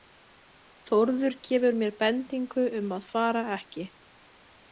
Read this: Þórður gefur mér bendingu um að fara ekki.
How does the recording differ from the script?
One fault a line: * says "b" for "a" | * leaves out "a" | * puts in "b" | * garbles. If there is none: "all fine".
all fine